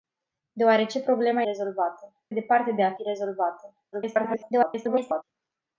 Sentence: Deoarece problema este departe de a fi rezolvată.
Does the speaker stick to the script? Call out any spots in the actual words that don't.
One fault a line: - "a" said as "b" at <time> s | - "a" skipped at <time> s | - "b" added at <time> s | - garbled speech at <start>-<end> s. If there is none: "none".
- "este" said as "rezolvată" at 1.4 s
- garbled speech at 3.9-5.2 s